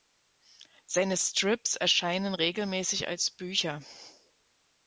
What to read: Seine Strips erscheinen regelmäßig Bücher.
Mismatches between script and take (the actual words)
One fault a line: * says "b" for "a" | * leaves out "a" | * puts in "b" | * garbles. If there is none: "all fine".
* puts in "als"